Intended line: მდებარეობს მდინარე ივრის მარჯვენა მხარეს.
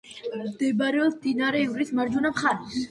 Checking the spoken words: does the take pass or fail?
pass